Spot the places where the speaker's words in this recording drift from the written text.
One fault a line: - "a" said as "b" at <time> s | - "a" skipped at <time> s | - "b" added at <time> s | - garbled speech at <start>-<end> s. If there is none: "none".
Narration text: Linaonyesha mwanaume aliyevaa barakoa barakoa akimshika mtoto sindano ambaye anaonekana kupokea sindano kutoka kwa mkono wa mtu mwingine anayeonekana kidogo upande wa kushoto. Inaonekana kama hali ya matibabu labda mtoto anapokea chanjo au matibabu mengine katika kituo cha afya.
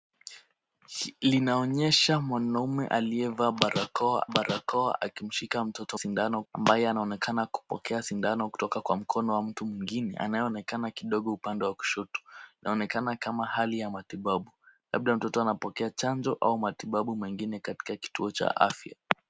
none